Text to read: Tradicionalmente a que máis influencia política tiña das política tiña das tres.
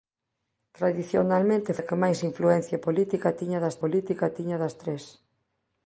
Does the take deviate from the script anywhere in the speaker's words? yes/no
no